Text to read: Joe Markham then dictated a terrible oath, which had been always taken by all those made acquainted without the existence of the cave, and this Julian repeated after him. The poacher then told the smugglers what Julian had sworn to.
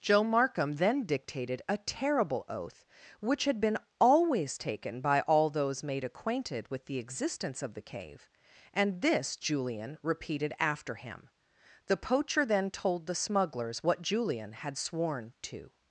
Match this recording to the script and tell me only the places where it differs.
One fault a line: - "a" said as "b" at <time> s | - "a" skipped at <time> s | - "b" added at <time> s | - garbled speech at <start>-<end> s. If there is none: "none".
- "without" said as "with" at 6.7 s